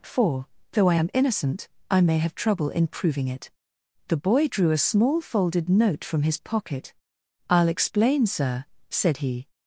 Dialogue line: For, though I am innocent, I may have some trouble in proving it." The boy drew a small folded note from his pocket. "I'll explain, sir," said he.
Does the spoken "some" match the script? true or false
false